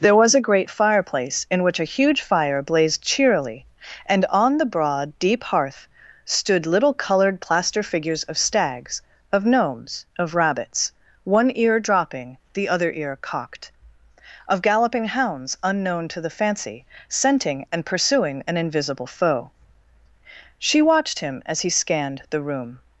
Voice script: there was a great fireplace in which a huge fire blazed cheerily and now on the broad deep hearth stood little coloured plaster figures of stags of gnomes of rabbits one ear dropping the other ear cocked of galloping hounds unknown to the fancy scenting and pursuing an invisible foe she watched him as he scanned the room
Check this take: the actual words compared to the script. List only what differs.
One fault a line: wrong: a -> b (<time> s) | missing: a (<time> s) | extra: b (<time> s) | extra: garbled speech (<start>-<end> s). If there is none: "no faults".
missing: now (4.2 s)